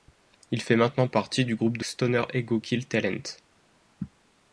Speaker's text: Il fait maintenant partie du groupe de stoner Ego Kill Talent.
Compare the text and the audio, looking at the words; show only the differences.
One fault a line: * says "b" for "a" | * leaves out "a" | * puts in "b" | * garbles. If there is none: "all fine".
all fine